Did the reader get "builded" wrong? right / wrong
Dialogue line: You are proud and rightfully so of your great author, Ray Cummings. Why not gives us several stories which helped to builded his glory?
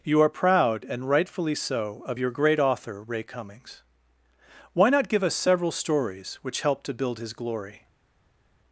wrong